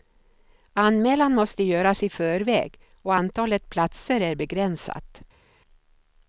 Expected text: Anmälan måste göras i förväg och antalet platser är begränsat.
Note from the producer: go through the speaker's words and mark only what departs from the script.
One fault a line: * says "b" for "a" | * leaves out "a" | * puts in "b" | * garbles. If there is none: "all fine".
all fine